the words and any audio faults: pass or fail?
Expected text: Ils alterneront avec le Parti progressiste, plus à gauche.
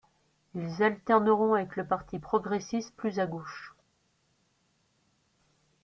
pass